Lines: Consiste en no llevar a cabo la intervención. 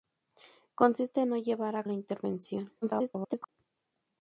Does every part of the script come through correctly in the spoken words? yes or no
no